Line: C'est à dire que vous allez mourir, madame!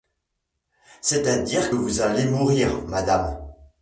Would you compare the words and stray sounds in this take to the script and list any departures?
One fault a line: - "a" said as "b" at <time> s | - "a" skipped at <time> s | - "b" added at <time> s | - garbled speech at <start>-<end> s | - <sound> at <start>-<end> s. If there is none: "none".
- "que" skipped at 1.7 s